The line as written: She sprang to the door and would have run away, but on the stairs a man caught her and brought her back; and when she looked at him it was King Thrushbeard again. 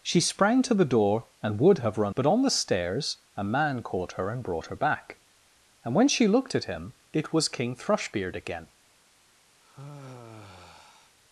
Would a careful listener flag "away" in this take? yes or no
yes